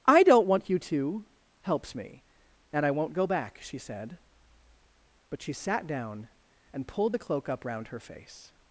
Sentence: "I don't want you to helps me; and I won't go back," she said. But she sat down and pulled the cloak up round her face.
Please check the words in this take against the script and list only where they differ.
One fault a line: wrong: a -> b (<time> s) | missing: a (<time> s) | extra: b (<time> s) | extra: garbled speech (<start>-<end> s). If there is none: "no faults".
no faults